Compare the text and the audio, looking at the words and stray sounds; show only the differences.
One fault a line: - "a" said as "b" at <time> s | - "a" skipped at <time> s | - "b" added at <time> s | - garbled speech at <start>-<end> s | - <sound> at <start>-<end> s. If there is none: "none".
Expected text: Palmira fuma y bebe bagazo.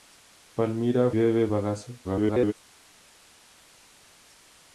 - "fuma y" skipped at 1.1 s
- garbled speech at 2.0-2.5 s